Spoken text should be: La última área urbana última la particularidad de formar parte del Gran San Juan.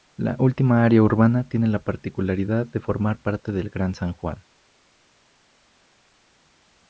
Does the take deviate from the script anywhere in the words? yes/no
yes